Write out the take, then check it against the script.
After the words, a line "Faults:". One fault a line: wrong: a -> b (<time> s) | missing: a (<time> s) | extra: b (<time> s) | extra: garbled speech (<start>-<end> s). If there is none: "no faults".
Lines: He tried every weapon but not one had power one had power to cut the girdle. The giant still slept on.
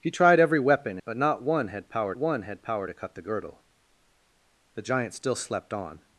He tried every weapon but not one had power one had power to cut the girdle. The giant still slept on.
Faults:
no faults